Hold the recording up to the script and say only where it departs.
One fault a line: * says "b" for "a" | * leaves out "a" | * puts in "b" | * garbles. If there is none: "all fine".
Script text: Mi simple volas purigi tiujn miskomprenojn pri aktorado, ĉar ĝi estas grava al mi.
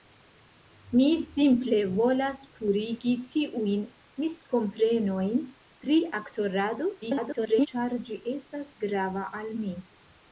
* garbles